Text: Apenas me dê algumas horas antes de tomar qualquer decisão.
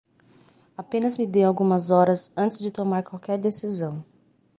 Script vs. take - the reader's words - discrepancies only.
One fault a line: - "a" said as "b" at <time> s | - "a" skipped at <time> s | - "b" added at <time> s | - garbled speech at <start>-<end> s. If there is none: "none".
none